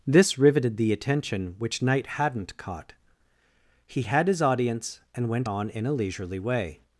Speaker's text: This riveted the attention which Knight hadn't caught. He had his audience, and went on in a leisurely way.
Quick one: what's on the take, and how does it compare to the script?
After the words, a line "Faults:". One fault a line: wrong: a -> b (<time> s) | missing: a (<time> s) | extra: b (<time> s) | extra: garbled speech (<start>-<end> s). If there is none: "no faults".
This riveted the attention which Knight hadn't caught. He had his audience, and went on in a leisurely way.
Faults:
no faults